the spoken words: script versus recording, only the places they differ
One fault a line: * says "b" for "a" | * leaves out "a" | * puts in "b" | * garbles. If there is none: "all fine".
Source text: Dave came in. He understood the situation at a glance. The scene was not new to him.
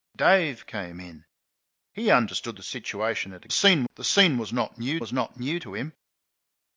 * says "scene" for "glance"
* puts in "was not new"